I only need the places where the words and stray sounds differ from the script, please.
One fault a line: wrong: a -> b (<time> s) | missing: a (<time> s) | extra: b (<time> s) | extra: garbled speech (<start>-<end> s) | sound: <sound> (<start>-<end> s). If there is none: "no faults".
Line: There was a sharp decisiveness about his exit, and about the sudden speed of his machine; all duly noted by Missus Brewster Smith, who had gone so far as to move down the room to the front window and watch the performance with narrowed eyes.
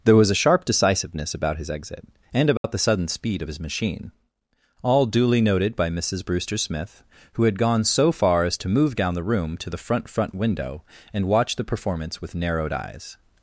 sound: dropout (2.6-2.6 s)
extra: front (10.1 s)